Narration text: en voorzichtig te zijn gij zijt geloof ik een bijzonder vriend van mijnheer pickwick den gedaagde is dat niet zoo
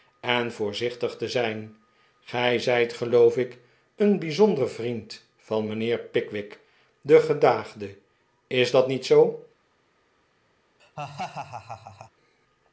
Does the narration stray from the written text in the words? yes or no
no